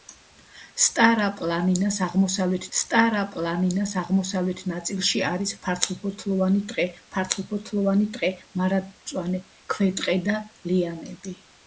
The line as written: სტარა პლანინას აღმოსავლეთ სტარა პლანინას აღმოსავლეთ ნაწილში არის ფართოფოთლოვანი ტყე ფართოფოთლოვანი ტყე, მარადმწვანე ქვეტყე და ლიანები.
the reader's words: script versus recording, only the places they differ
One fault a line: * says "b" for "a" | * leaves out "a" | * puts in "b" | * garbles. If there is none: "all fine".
all fine